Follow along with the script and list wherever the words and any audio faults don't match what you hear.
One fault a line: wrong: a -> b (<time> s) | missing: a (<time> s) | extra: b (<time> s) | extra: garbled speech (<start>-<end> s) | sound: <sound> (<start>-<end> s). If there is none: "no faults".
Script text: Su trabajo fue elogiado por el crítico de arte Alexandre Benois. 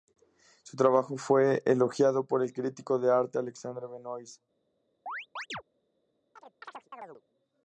sound: chirp (5.1-5.6 s)
sound: chirp (6.4-7.2 s)